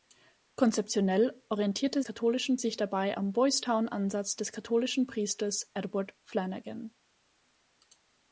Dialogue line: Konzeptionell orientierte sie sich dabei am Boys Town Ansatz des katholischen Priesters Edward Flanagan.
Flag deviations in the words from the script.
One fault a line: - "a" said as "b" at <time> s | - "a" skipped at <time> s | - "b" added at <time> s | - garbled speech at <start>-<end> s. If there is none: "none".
- "sie" said as "katholischen" at 2.0 s